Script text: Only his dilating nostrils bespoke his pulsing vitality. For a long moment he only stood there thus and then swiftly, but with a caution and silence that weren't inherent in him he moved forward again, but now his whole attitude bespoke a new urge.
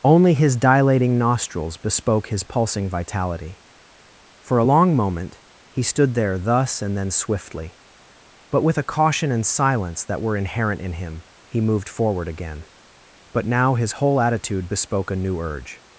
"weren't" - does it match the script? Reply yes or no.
no